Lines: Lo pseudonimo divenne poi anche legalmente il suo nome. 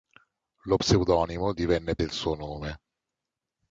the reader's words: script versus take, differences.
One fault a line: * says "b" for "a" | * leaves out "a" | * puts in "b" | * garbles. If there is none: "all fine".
* leaves out "poi anche legalmente"